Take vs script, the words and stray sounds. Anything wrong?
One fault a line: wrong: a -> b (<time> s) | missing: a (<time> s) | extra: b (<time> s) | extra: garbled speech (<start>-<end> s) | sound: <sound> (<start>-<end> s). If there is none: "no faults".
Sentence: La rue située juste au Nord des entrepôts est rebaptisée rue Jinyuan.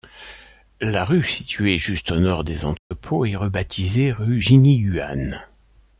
sound: dropout (2.8-2.9 s)